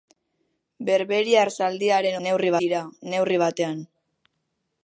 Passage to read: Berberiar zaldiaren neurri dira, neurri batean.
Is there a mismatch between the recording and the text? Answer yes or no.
no